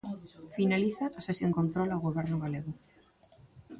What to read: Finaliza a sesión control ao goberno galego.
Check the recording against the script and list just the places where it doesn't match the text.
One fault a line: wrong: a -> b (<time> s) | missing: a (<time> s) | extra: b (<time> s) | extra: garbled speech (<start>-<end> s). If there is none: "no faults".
no faults